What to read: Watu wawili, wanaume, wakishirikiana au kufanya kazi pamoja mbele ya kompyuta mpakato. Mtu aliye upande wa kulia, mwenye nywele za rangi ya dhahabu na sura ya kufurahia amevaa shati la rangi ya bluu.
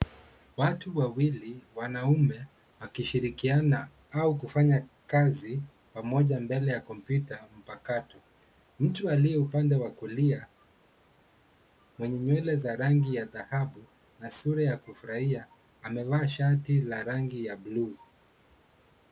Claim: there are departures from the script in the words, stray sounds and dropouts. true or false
false